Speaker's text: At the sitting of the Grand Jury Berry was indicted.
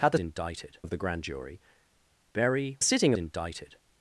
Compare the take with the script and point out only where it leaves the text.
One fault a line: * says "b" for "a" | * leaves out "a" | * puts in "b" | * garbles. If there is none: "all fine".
* says "indicted" for "sitting"
* says "sitting" for "was"